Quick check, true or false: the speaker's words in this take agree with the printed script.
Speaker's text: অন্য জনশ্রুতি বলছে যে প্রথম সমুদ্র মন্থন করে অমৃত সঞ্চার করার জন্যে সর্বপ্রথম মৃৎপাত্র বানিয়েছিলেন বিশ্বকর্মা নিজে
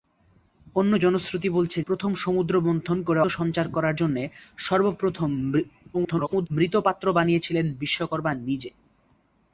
false